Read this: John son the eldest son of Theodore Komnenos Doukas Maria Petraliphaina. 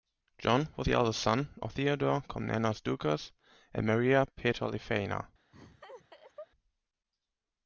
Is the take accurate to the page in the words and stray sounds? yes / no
no